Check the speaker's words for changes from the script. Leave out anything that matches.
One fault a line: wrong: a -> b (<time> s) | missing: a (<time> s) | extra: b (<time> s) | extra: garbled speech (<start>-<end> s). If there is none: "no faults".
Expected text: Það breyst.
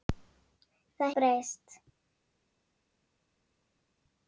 no faults